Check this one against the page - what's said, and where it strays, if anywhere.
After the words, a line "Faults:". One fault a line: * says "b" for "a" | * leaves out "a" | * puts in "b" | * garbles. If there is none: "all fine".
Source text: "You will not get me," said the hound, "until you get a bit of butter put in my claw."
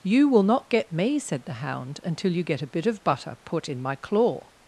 "You will not get me," said the hound, "until you get a bit of butter put in my claw."
Faults:
all fine